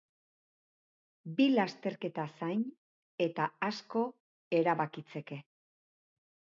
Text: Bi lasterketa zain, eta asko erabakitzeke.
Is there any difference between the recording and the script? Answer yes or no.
no